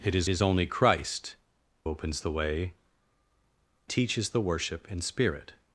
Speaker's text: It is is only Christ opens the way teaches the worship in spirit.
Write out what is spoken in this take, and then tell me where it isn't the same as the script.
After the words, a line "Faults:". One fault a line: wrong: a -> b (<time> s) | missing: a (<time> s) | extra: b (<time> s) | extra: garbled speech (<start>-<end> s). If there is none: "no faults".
It is is only Christ opens the way teaches the worship in spirit.
Faults:
no faults